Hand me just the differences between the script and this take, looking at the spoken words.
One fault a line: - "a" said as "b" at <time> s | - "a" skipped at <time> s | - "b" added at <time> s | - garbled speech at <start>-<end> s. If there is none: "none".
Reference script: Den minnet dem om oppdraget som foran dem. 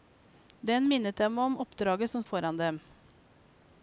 none